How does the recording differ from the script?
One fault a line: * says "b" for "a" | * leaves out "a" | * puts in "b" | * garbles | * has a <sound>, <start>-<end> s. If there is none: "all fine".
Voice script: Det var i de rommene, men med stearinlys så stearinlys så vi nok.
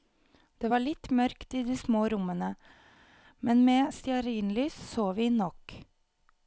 * puts in "litt mørkt"
* puts in "små"
* leaves out "stearinlys så"